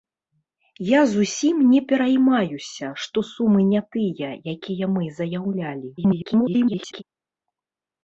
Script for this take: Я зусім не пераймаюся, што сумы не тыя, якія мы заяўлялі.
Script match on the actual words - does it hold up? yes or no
no